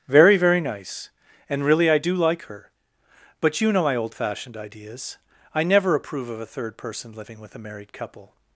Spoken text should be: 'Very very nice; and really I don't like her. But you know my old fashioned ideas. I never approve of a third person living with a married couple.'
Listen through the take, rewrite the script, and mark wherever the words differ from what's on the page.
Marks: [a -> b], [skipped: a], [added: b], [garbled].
'Very very nice; and really I [don't -> do] like her. But you know my old fashioned ideas. I never approve of a third person living with a married couple.'